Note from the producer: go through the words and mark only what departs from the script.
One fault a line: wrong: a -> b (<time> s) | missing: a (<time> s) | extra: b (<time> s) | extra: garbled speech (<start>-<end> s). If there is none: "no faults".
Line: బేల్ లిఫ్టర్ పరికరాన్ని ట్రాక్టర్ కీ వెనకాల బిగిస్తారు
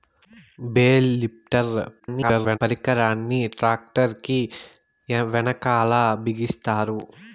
extra: garbled speech (2.0-2.6 s)